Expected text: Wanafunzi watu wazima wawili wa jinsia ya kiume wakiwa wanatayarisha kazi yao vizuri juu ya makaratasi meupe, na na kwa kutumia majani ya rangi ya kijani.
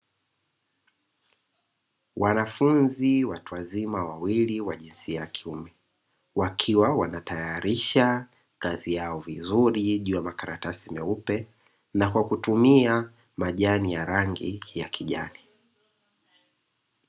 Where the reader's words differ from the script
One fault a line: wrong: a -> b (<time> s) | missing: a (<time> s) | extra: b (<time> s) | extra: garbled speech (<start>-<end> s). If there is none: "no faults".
missing: na (12.1 s)